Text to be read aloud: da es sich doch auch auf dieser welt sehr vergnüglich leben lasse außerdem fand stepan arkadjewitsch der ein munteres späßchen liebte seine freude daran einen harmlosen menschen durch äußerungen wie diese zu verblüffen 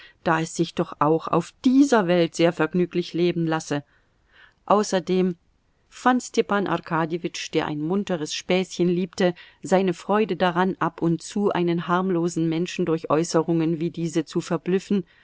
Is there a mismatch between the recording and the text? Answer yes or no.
yes